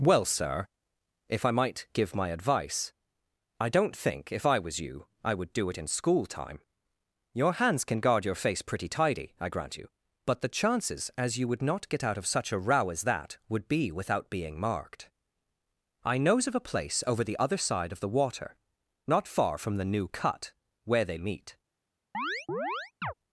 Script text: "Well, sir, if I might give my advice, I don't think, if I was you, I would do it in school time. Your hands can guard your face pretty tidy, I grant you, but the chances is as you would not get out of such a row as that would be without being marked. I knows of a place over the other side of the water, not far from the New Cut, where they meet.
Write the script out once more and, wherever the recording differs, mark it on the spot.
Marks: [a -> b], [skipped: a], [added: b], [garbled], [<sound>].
"Well, sir, if I might give my advice, I don't think, if I was you, I would do it in school time. Your hands can guard your face pretty tidy, I grant you, but the chances [skipped: is] as you would not get out of such a row as that would be without being marked. I knows of a place over the other side of the water, not far from the New Cut, where they meet. [chirp]